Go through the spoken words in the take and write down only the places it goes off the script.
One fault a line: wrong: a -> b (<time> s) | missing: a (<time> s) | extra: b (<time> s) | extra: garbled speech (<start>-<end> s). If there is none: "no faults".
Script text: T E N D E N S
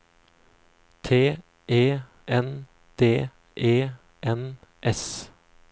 no faults